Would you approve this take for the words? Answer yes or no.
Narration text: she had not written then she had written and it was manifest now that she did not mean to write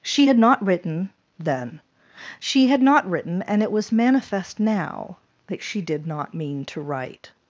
no